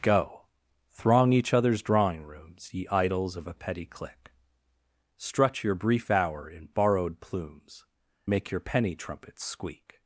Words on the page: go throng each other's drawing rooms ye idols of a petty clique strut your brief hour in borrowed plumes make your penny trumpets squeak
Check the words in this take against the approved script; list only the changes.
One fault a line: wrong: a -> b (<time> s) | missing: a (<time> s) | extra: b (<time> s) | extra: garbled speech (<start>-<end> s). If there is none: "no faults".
no faults